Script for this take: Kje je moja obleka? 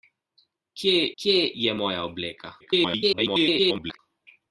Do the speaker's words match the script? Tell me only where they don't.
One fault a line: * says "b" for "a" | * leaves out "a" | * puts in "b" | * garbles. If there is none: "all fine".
* puts in "kje"
* garbles